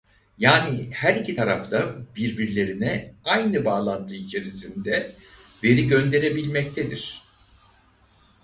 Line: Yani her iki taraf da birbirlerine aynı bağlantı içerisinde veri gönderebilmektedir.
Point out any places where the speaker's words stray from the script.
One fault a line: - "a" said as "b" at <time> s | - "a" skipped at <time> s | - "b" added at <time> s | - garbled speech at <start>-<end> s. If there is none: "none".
none